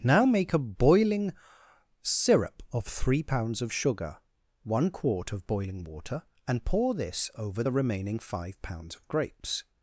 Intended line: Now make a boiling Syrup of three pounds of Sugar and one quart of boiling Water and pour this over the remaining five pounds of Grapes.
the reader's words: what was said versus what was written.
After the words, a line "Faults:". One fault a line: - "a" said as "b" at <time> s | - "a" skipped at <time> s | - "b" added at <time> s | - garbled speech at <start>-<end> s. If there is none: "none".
Now make a boiling Syrup of three pounds of Sugar one quart of boiling Water and pour this over the remaining five pounds of Grapes.
Faults:
- "and" skipped at 4.2 s